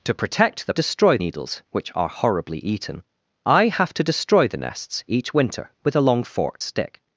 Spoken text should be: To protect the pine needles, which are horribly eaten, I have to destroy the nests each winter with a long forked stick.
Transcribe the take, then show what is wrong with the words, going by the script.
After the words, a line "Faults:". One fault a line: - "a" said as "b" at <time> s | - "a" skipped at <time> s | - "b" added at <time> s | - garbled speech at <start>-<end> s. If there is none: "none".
To protect the destroy needles, which are horribly eaten, I have to destroy the nests each winter with a long forked stick.
Faults:
- "pine" said as "destroy" at 0.7 s